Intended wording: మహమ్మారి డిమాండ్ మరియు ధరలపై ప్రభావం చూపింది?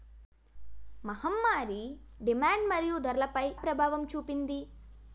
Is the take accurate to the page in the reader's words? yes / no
yes